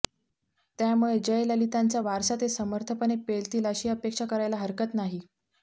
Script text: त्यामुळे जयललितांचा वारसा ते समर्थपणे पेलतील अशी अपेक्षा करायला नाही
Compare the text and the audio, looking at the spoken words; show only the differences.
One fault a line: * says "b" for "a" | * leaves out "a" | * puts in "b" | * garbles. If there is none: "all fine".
* puts in "हरकत"